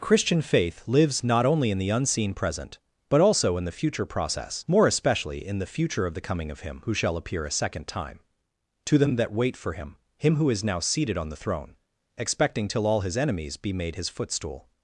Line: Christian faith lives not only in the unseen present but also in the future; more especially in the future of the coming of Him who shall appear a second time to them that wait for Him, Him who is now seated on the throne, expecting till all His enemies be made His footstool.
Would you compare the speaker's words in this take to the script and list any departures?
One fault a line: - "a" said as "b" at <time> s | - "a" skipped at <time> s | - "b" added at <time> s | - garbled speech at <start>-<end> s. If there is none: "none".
- "process" added at 4.0 s